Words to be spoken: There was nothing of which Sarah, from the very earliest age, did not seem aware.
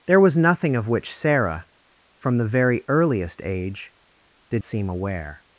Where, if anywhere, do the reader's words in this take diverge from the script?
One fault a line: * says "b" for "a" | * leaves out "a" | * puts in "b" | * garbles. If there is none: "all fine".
* leaves out "not"